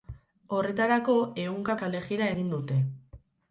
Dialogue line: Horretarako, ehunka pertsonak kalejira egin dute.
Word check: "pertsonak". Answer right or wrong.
wrong